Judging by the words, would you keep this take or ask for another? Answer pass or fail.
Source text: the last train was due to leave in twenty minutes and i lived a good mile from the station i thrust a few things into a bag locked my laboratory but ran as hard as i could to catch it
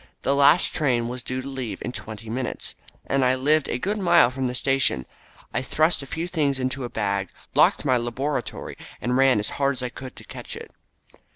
fail